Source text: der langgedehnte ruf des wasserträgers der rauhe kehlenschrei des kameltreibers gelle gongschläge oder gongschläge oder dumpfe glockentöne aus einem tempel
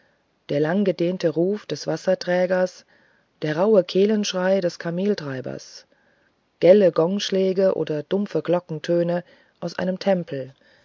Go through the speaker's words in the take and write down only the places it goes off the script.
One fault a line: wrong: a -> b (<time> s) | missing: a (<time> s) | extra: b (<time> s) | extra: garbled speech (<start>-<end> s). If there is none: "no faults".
missing: gongschläge oder (8.0 s)